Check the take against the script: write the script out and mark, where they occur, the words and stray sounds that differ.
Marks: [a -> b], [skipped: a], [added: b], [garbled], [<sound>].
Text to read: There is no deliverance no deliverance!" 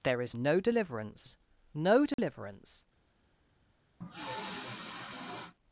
There is no deliverance no deliverance!" [dropout] [sniff]